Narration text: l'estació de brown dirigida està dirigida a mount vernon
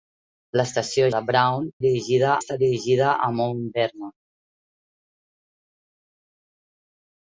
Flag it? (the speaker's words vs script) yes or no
no